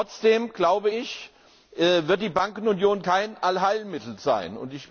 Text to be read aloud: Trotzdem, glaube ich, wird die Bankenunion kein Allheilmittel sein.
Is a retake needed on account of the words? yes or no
no